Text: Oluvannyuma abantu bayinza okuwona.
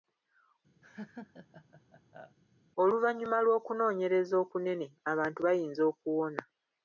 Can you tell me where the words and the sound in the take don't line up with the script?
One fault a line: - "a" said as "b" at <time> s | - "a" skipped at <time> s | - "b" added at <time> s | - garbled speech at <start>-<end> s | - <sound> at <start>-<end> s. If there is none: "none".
- laugh at 0.8-2.4 s
- "lw'okunoonyereza okunene" added at 3.4 s